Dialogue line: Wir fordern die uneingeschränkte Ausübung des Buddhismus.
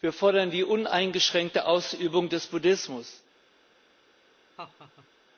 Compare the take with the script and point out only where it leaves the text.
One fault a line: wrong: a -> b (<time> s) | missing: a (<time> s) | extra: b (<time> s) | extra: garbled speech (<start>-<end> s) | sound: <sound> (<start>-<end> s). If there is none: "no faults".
sound: laugh (4.6-5.1 s)